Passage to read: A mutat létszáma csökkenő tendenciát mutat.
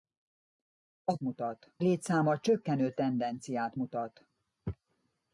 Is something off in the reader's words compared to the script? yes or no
no